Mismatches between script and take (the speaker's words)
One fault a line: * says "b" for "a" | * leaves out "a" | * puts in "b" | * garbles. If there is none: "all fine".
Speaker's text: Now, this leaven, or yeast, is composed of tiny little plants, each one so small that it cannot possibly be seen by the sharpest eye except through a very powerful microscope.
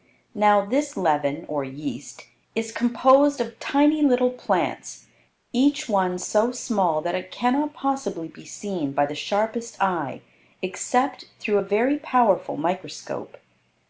all fine